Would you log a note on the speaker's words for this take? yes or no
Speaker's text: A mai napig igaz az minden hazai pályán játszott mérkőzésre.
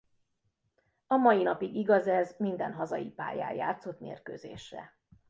yes